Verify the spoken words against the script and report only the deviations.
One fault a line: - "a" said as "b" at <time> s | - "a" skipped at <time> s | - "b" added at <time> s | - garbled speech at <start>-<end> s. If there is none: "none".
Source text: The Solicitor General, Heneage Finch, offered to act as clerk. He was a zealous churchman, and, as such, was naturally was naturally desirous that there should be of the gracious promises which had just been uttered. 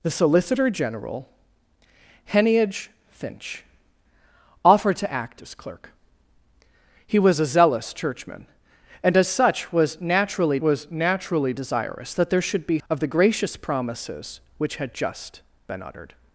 none